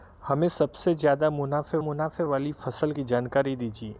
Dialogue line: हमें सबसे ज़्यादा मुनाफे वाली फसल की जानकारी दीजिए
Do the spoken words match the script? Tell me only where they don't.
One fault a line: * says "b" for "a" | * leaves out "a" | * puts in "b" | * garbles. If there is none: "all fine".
* puts in "मुनाफे"